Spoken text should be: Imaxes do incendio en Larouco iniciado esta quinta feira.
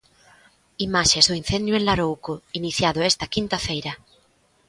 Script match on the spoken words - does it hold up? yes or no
yes